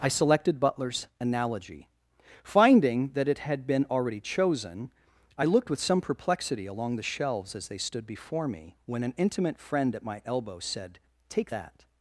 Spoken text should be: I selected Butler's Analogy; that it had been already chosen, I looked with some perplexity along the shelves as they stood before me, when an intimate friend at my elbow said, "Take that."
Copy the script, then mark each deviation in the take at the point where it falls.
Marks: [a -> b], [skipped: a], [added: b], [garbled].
I selected Butler's Analogy; [added: finding] that it had been already chosen, I looked with some perplexity along the shelves as they stood before me, when an intimate friend at my elbow said, "Take that."